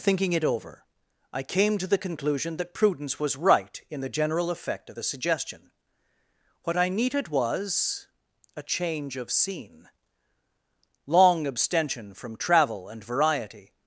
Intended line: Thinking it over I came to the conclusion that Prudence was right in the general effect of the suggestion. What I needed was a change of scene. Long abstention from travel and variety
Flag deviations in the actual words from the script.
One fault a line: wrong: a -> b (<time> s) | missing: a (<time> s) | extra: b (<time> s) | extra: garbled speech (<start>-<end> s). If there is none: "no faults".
no faults